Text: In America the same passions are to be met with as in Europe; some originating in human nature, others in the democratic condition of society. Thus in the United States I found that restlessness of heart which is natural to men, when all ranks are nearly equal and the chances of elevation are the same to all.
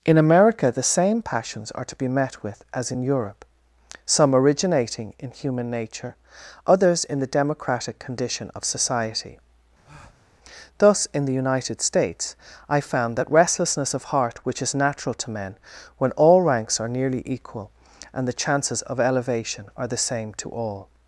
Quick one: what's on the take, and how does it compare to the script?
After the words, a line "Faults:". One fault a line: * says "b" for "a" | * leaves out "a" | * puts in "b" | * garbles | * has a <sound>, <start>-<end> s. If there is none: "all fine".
In America the same passions are to be met with as in Europe; some originating in human nature, others in the democratic condition of society. Thus in the United States I found that restlessness of heart which is natural to men, when all ranks are nearly equal and the chances of elevation are the same to all.
Faults:
* has a breath, 9.8-10.3 s